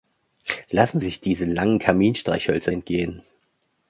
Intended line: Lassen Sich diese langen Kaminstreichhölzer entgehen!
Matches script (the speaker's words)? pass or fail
pass